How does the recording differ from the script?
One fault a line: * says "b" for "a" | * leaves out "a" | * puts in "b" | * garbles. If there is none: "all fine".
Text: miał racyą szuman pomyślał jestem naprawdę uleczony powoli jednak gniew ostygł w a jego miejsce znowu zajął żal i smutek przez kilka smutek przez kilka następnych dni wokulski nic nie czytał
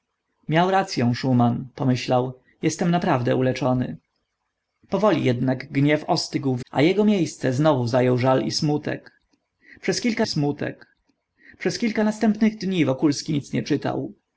all fine